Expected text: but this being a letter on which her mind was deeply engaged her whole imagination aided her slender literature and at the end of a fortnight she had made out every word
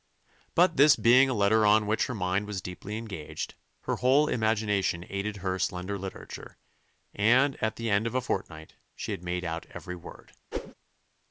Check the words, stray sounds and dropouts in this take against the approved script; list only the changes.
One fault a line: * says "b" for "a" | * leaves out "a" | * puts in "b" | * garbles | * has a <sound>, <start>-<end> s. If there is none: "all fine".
* has a whoosh, 10.5-10.7 s